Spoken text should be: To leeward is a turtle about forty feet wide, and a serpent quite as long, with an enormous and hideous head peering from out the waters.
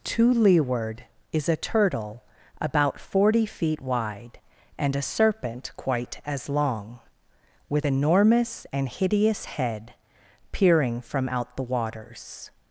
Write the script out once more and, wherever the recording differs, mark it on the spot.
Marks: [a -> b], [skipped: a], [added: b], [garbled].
To leeward is a turtle about forty feet wide, and a serpent quite as long, with [skipped: an] enormous and hideous head peering from out the waters.